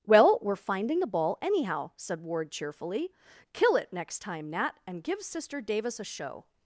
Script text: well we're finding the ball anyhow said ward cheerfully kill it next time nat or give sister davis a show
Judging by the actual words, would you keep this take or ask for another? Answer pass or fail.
fail